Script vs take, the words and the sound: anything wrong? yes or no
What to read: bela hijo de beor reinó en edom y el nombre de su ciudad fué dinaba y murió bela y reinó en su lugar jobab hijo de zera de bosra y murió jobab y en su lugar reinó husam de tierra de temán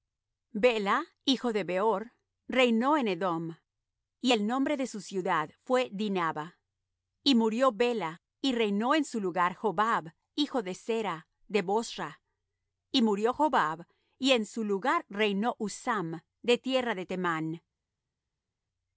no